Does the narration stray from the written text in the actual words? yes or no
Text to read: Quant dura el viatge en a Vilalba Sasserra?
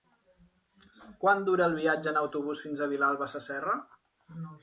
yes